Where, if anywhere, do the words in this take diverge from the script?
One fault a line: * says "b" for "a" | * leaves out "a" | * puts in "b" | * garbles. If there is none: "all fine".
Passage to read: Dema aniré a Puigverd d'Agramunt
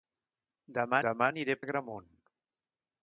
* puts in "dema"
* leaves out "Puigverd"